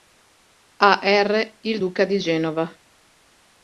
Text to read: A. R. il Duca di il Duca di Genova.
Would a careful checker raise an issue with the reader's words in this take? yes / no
yes